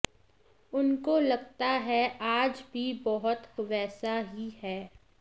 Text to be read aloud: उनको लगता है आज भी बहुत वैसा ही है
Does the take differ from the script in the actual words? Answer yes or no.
no